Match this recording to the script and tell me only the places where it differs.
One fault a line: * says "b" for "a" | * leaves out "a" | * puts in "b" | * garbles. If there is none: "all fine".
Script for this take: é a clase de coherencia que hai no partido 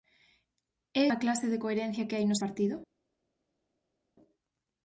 all fine